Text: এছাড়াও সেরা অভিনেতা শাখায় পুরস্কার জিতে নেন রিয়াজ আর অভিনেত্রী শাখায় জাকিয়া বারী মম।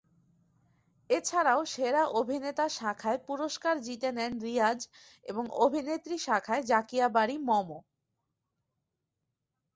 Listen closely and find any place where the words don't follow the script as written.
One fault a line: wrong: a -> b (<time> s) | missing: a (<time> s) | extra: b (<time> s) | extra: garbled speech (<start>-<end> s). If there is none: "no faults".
wrong: আর -> এবং (5.2 s)